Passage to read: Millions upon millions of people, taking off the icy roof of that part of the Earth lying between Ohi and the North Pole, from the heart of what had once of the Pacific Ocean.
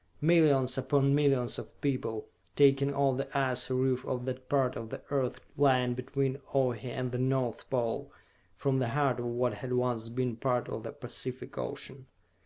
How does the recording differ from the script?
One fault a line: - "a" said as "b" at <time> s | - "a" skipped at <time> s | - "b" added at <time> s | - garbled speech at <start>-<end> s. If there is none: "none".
- "been part" added at 10.1 s